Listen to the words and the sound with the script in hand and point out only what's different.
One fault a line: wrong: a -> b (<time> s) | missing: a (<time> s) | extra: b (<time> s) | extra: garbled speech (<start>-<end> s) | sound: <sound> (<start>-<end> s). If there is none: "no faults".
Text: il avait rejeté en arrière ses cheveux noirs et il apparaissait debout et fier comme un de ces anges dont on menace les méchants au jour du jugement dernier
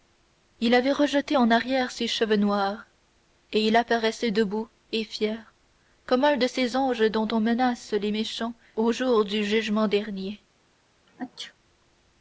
sound: sneeze (11.1-11.5 s)